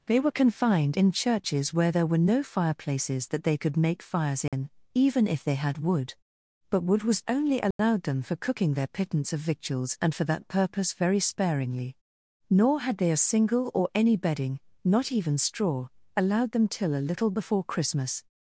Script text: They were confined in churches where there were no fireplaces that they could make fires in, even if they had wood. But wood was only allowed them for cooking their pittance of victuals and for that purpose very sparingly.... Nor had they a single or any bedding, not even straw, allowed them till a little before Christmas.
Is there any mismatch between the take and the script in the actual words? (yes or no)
no